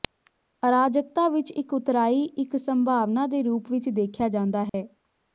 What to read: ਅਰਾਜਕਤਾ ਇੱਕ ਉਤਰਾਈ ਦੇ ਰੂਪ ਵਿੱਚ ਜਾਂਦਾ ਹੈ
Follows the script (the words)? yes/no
no